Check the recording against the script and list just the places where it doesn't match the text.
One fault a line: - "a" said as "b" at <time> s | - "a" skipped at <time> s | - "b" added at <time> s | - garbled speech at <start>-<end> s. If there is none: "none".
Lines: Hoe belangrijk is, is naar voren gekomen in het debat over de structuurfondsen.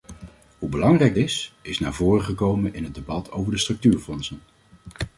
none